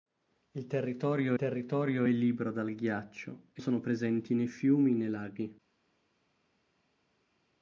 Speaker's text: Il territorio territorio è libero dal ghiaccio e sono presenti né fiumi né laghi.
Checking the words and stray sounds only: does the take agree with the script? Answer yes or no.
yes